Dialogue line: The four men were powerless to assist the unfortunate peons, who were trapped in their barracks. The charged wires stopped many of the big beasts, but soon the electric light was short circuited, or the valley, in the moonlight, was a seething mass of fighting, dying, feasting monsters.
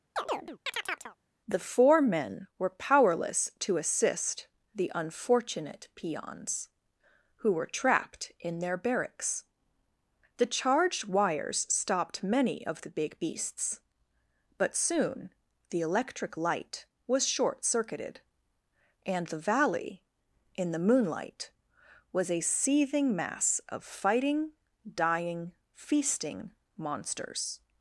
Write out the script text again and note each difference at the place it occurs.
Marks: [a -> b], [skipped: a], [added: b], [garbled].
The four men were powerless to assist the unfortunate peons, who were trapped in their barracks. The charged wires stopped many of the big beasts, but soon the electric light was short circuited, [or -> and] the valley, in the moonlight, was a seething mass of fighting, dying, feasting monsters.